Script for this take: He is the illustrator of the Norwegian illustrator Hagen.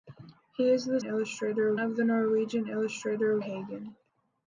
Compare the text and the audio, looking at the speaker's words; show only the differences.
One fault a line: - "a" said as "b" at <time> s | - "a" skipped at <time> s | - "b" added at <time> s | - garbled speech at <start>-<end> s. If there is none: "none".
none